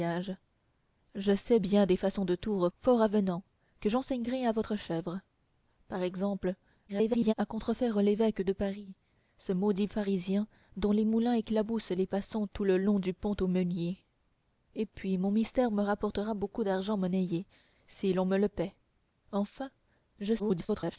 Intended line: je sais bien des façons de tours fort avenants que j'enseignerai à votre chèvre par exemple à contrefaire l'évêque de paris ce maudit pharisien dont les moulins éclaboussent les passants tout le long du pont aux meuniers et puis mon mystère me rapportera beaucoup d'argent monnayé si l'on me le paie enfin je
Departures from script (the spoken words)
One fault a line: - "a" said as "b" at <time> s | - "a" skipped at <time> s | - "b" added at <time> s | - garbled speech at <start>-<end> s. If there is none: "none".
- garbled speech at 6.9-7.3 s
- garbled speech at 20.4-21.0 s